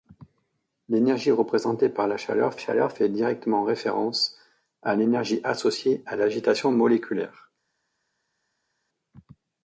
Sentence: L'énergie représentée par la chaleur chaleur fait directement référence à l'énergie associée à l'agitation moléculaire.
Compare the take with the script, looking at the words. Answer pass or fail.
pass